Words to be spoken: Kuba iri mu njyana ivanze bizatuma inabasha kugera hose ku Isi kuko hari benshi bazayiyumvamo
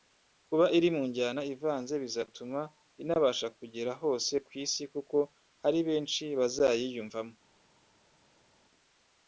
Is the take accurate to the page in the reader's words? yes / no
yes